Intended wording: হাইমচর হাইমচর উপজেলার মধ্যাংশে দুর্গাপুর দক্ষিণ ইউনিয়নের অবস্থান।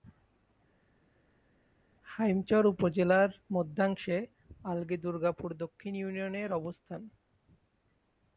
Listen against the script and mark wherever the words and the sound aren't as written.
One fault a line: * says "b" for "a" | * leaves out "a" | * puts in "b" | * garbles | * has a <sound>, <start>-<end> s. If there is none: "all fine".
* leaves out "হাইমচর"
* puts in "আলগী"